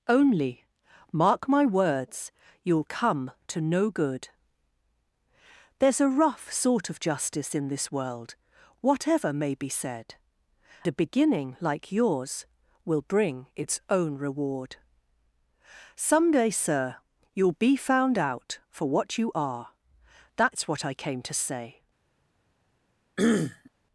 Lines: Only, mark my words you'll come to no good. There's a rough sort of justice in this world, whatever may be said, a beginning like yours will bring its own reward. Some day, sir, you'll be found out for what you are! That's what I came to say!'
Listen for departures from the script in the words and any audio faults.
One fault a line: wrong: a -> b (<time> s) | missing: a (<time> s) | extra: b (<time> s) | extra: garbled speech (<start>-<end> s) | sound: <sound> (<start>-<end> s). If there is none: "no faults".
sound: throat clearing (23.2-23.7 s)